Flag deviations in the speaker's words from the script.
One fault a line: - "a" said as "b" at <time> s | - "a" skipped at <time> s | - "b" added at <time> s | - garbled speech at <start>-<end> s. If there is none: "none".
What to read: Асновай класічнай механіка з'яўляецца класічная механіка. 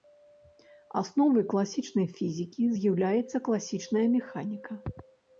- "механіка" said as "фізікі" at 2.1 s